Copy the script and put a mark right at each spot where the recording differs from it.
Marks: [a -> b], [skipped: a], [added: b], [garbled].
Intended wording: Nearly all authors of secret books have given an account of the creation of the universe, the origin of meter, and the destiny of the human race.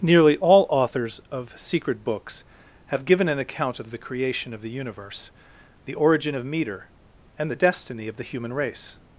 Nearly all authors of secret books have given an account of the creation of the universe, the origin of meter, and the destiny of the human race.